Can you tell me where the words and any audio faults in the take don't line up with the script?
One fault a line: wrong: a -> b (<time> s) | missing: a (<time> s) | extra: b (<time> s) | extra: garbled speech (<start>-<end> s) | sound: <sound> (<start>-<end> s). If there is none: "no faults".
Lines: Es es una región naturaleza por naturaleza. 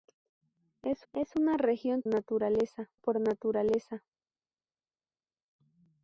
no faults